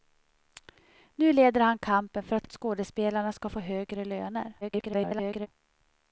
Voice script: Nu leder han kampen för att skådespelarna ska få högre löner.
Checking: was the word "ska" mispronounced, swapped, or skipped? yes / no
no